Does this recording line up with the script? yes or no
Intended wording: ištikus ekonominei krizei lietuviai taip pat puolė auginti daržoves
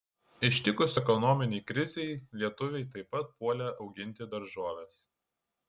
yes